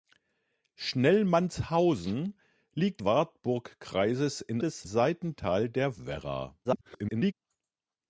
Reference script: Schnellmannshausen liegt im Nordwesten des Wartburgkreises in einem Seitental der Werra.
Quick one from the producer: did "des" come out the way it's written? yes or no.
no